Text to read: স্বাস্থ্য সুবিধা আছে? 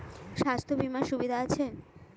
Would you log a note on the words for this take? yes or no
yes